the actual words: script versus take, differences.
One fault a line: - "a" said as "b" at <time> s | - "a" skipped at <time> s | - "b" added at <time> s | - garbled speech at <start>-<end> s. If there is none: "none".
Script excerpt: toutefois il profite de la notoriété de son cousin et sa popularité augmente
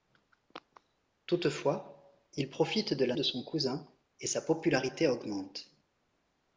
- "notoriété" skipped at 3.1 s